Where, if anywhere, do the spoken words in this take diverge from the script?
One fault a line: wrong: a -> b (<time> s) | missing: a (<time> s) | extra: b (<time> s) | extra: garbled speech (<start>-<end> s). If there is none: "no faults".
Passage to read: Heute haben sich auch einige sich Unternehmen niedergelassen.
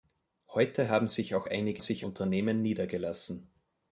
no faults